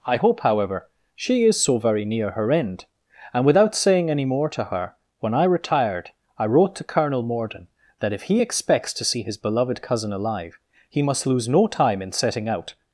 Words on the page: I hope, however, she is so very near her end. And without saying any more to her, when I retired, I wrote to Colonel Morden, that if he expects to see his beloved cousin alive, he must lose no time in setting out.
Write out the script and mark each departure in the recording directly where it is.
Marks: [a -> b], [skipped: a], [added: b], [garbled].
I hope, however, she is so very near her end. And without saying any more to her, when I retired, I wrote to Colonel Morden, that if he expects to see his beloved cousin alive, he must lose no time in setting out.